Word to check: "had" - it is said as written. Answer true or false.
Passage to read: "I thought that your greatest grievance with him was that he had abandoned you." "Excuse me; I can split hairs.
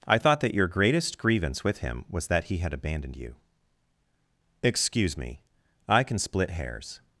true